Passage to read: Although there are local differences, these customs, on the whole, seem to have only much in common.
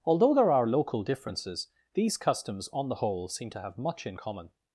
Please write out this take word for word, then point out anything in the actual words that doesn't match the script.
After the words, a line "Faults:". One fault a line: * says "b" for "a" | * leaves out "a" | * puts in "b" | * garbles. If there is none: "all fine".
Although there are local differences, these customs, on the whole, seem to have much in common.
Faults:
* leaves out "only"